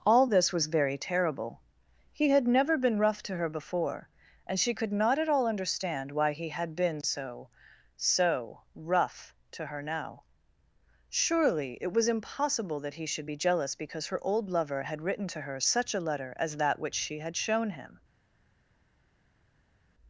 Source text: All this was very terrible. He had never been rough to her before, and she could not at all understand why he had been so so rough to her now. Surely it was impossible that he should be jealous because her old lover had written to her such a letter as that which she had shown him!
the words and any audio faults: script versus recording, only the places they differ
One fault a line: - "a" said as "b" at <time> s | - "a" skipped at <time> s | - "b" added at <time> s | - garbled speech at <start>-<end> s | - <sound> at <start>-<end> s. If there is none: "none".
none